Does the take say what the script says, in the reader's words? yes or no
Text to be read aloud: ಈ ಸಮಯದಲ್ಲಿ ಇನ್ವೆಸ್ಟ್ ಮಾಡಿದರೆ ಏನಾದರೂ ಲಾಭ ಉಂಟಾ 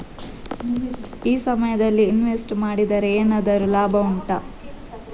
yes